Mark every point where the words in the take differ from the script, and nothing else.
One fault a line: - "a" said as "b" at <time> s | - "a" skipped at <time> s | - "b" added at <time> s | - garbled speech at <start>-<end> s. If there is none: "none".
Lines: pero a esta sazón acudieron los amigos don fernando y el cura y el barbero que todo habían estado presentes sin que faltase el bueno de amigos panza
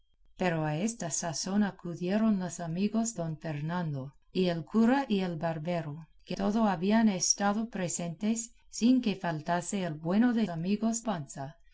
none